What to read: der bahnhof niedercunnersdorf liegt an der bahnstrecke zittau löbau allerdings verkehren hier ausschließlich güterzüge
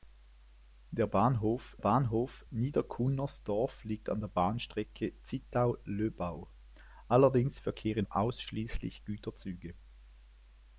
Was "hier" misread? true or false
true